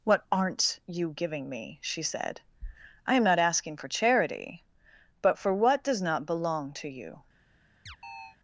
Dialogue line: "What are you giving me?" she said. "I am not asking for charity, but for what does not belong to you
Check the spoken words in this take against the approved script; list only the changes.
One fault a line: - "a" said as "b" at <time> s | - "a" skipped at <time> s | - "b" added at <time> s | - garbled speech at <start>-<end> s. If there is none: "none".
- "are" said as "aren't" at 0.3 s